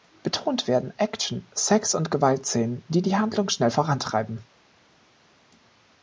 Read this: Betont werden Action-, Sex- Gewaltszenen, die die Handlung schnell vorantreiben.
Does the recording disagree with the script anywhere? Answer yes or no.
yes